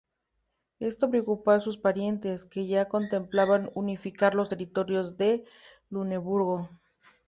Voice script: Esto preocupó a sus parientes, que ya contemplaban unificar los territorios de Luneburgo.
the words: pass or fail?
pass